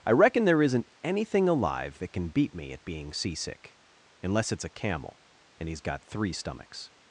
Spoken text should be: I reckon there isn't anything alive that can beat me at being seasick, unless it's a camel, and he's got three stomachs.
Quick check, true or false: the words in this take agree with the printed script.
true